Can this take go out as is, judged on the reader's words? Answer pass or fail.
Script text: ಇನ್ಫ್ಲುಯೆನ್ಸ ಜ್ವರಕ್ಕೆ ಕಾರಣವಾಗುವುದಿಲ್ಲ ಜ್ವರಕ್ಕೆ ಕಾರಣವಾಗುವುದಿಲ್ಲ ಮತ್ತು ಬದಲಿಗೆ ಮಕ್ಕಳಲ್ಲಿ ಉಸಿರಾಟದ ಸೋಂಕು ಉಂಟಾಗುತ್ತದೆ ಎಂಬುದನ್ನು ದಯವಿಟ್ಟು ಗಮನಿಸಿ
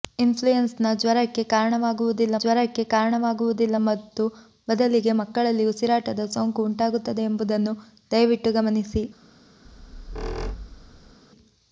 pass